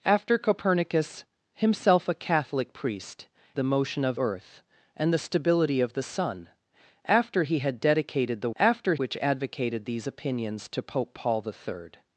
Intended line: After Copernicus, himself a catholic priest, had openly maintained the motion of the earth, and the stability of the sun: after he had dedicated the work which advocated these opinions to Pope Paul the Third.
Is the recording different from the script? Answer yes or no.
yes